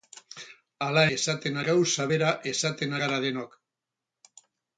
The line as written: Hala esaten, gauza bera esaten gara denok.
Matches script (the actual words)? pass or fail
pass